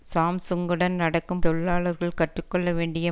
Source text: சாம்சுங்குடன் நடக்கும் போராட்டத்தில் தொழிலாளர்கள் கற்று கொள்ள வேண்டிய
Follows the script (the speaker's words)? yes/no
no